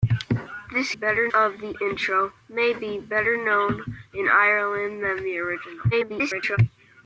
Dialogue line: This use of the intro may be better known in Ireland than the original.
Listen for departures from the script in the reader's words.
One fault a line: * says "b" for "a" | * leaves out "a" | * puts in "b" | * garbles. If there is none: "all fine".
* says "better" for "use"
* garbles